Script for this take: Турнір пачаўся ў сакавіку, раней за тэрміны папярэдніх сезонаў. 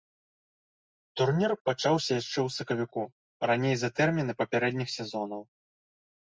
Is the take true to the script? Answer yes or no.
no